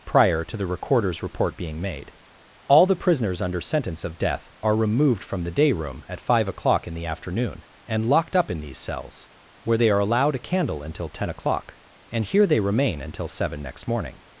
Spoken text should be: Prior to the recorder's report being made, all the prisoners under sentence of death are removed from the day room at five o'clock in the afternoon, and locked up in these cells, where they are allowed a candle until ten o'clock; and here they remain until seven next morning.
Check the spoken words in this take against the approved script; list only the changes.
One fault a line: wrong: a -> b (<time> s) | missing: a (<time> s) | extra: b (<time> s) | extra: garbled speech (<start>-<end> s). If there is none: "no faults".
no faults